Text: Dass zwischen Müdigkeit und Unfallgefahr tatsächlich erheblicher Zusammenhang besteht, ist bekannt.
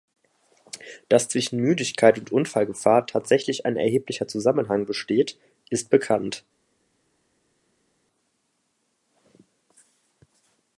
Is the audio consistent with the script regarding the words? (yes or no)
no